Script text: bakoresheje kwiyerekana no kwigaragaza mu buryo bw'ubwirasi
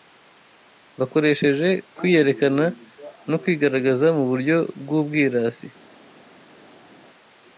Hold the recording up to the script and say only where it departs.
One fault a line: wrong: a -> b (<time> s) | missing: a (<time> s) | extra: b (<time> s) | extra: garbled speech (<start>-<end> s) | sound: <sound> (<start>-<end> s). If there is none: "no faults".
no faults